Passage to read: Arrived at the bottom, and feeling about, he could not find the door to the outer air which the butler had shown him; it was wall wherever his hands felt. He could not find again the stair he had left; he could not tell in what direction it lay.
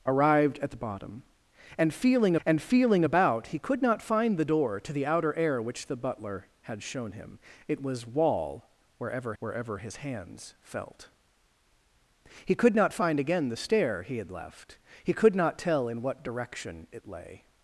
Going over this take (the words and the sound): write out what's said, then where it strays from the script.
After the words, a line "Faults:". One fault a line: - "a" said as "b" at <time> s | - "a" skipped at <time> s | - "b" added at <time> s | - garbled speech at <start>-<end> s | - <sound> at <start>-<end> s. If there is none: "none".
Arrived at the bottom, and feeling and feeling about, he could not find the door to the outer air which the butler had shown him; it was wall wherever wherever his hands felt. He could not find again the stair he had left; he could not tell in what direction it lay.
Faults:
- "and feeling" added at 2.4 s
- "wherever" added at 9.4 s